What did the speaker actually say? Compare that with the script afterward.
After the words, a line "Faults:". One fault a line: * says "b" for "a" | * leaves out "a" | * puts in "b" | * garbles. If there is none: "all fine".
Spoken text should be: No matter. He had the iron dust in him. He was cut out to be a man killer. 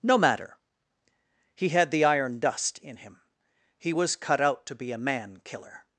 No matter. He had the iron dust in him. He was cut out to be a man killer.
Faults:
all fine